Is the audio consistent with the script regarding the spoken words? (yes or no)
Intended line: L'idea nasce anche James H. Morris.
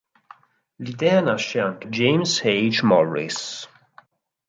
yes